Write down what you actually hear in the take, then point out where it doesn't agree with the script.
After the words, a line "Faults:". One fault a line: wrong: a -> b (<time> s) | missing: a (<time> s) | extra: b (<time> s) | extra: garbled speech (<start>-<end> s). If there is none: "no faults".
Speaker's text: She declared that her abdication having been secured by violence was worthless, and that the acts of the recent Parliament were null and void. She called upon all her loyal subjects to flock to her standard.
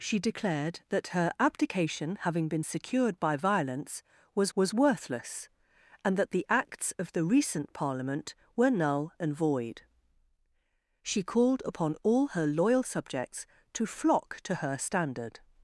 She declared that her abdication having been secured by violence was was worthless, and that the acts of the recent Parliament were null and void. She called upon all her loyal subjects to flock to her standard.
Faults:
extra: was (4.5 s)